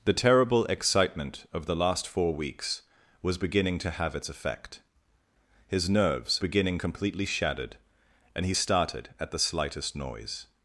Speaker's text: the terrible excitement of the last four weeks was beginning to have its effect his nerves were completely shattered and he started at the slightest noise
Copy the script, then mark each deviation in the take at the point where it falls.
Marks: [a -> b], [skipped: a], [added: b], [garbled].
the terrible excitement of the last four weeks was beginning to have its effect his nerves [were -> beginning] completely shattered and he started at the slightest noise